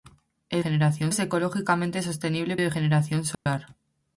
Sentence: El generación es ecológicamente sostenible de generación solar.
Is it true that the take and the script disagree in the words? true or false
false